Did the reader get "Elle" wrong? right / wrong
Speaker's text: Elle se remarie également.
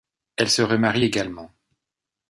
right